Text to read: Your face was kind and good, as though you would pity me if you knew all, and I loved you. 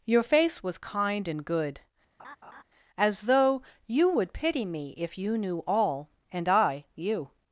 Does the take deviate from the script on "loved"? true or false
true